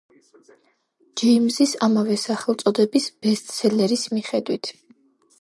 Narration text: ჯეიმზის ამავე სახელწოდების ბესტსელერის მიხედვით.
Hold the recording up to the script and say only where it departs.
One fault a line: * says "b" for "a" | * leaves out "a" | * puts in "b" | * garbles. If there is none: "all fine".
all fine